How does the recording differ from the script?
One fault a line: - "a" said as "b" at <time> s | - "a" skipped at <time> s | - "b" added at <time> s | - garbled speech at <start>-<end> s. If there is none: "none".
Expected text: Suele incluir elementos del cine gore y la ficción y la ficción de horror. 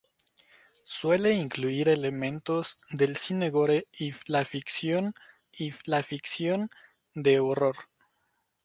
none